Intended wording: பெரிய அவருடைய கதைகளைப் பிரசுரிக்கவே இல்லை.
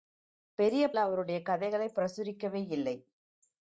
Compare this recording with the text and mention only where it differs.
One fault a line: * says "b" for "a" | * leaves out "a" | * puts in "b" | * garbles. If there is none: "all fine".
all fine